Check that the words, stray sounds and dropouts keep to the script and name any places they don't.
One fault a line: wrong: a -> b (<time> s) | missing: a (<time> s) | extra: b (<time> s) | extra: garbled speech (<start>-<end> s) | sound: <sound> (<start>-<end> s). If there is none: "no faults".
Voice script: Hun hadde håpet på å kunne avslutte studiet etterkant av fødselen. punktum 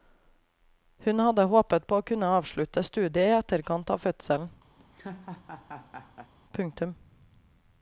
extra: i (3.3 s)
sound: laugh (4.8-6.3 s)